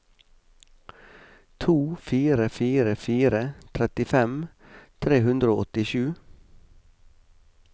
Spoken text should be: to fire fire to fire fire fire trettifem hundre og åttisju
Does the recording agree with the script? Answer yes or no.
no